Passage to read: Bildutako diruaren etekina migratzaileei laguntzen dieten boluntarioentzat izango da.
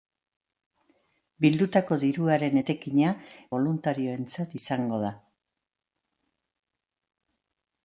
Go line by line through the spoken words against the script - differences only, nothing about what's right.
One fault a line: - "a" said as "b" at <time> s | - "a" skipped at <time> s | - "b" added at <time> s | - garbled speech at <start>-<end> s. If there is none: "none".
- "migratzaileei laguntzen dieten" skipped at 3.1 s